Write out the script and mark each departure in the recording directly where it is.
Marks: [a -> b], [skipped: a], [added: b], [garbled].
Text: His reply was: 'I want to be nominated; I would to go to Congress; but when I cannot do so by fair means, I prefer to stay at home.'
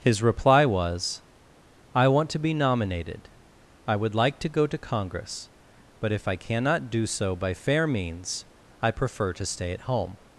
His reply was: 'I want to be nominated; I would [added: like] to go to Congress; but [when -> if] I cannot do so by fair means, I prefer to stay at home.'